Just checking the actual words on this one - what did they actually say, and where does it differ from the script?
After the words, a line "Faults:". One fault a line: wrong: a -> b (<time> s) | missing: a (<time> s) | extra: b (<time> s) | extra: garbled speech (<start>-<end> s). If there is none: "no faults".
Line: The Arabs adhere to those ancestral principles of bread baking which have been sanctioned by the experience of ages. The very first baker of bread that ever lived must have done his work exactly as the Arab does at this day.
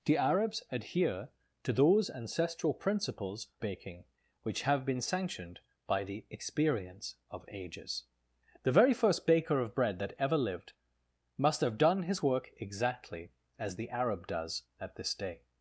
The Arabs adhere to those ancestral principles baking which have been sanctioned by the experience of ages. The very first baker of bread that ever lived must have done his work exactly as the Arab does at this day.
Faults:
missing: of bread (3.5 s)